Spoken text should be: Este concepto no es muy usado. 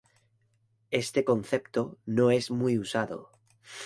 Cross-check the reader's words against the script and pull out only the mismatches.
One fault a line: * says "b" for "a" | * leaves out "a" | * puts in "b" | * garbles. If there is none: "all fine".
all fine